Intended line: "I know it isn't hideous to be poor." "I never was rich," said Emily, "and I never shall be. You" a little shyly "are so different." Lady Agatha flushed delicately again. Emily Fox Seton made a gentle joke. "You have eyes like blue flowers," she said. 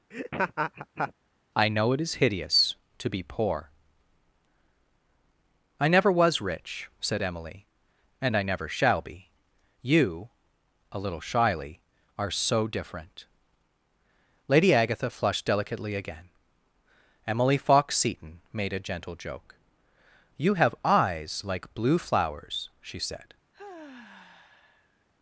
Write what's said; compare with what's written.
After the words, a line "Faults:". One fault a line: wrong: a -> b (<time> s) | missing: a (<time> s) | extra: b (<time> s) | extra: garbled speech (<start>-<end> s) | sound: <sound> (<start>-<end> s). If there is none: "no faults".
"I know it is hideous to be poor." "I never was rich," said Emily, "and I never shall be. You" a little shyly "are so different." Lady Agatha flushed delicately again. Emily Fox Seton made a gentle joke. "You have eyes like blue flowers," she said.
Faults:
sound: laugh (0.1-1.1 s)
wrong: isn't -> is (2.0 s)
sound: sigh (23.5-25.1 s)